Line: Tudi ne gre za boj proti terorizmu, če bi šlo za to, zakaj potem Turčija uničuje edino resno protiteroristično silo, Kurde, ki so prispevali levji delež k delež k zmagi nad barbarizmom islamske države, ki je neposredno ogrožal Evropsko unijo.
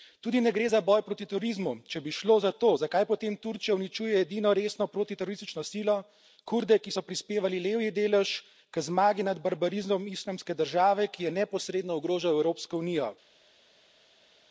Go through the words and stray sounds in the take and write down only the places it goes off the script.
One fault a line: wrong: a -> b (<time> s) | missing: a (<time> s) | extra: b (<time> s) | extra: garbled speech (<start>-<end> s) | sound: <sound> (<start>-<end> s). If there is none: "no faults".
missing: delež k (8.8 s)